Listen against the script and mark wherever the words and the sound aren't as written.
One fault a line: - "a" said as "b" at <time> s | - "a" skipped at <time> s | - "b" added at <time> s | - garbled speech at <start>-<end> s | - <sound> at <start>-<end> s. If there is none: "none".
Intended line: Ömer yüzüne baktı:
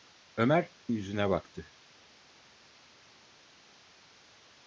none